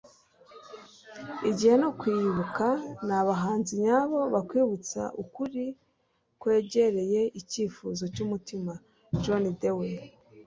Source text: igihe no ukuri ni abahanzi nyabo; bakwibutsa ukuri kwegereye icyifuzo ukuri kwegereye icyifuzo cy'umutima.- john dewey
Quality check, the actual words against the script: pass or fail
fail